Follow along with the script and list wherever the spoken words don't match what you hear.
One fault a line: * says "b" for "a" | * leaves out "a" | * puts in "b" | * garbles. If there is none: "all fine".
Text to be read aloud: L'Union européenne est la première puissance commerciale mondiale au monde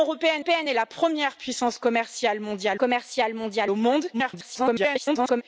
* puts in "européenne"
* puts in "commerciale mondiale"
* garbles